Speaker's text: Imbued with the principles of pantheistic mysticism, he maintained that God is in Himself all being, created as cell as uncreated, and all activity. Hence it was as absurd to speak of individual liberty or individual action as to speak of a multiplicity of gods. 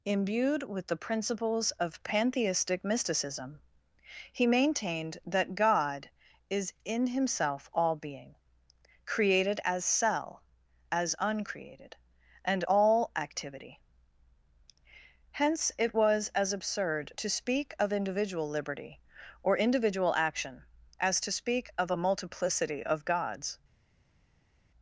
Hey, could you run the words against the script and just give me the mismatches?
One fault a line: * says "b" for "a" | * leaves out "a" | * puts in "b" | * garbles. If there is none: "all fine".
all fine